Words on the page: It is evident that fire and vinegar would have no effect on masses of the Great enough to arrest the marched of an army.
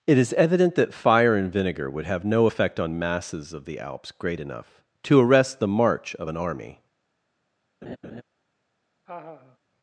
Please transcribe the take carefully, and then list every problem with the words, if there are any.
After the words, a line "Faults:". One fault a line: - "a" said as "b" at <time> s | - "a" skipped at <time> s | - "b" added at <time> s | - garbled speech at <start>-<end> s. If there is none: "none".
It is evident that fire and vinegar would have no effect on masses of the Alps great enough to arrest the march of an army.
Faults:
- "Alps" added at 3.8 s
- "marched" said as "march" at 5.7 s